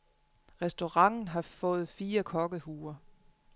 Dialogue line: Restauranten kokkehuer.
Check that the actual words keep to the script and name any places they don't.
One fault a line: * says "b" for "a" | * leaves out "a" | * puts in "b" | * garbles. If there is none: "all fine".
* puts in "har fået fire"